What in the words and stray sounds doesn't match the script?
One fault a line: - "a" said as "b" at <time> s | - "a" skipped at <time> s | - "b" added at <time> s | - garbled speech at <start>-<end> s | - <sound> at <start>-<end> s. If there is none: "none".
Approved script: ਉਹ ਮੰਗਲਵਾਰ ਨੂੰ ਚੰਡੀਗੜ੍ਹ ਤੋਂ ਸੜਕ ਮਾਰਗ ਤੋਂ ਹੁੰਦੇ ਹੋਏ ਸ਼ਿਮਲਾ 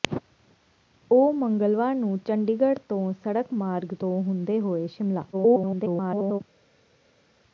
- garbled speech at 5.3-6.4 s